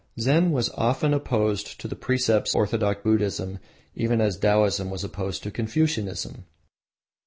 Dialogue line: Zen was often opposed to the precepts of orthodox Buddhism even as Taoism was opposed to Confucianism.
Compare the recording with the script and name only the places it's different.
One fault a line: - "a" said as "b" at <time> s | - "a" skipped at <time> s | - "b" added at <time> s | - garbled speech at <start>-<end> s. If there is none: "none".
- "of" skipped at 2.5 s